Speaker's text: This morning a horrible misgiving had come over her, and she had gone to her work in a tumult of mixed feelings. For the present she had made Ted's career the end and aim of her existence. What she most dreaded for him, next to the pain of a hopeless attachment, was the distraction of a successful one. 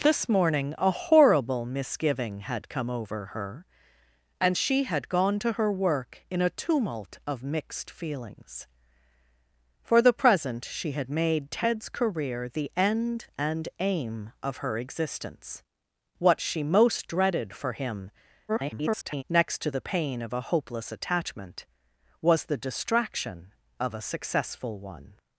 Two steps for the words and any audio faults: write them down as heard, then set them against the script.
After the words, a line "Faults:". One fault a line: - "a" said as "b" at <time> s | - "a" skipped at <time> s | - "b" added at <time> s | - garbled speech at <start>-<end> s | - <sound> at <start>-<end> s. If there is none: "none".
This morning a horrible misgiving had come over her, and she had gone to her work in a tumult of mixed feelings. For the present she had made Ted's career the end and aim of her existence. What she most dreaded for him, [garbled] next to the pain of a hopeless attachment, was the distraction of a successful one.
Faults:
- garbled speech at 18.5-19.2 s